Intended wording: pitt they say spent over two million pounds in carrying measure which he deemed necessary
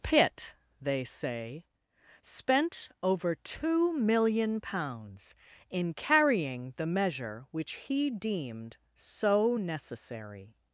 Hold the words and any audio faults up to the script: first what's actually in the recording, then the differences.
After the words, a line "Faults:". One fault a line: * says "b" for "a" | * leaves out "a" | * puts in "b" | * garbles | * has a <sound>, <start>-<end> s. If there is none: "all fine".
pitt they say spent over two million pounds in carrying the measure which he deemed so necessary
Faults:
* puts in "the"
* puts in "so"